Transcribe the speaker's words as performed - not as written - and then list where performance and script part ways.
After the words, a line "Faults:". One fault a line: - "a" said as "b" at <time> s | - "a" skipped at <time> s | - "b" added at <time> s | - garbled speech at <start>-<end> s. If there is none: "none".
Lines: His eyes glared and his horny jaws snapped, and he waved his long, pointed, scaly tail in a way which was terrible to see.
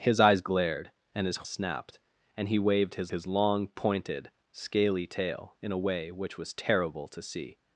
His eyes glared and his snapped, and he waved his his long, pointed, scaly tail in a way which was terrible to see.
Faults:
- "horny jaws" skipped at 1.4 s
- "his" added at 3.1 s